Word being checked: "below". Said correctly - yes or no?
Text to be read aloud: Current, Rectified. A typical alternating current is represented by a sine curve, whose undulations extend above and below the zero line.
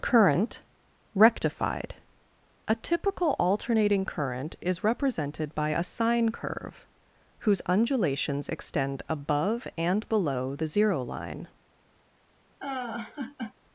yes